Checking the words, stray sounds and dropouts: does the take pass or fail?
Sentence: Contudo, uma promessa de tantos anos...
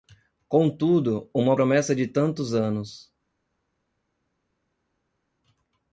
pass